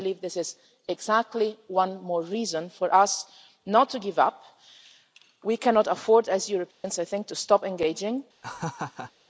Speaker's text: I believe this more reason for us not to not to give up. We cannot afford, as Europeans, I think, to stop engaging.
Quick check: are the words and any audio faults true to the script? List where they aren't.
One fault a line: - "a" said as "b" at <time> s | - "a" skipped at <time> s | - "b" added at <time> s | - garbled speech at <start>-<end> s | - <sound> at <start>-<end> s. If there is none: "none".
- "is exactly one" added at 0.4 s
- "not to" skipped at 4.0 s
- dropout at 6.7-6.8 s
- laugh at 8.4-9.1 s